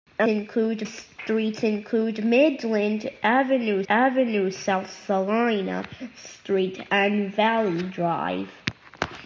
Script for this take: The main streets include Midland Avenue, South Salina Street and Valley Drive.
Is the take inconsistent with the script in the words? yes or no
yes